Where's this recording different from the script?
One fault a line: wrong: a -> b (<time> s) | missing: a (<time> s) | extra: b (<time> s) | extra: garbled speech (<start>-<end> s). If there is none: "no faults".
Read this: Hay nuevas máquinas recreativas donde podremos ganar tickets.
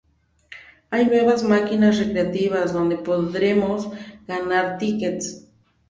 no faults